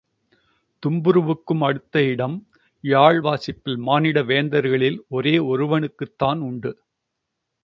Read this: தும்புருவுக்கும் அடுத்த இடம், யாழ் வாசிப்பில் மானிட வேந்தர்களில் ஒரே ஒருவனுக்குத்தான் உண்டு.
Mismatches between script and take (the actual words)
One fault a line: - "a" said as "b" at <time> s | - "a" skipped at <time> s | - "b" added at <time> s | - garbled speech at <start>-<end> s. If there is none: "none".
none